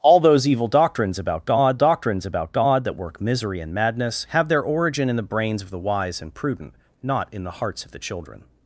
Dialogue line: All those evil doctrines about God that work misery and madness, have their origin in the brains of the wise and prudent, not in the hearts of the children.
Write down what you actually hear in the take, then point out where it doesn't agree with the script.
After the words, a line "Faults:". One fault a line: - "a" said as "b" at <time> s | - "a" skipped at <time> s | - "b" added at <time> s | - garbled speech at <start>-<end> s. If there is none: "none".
All those evil doctrines about God doctrines about God that work misery and madness, have their origin in the brains of the wise and prudent, not in the hearts of the children.
Faults:
- "doctrines about God" added at 1.7 s